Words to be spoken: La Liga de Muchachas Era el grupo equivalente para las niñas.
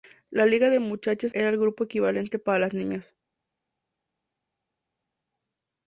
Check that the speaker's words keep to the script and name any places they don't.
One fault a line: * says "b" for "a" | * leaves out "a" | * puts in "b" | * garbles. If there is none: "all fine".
all fine